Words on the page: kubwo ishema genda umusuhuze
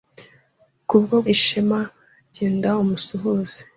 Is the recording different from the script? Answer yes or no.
no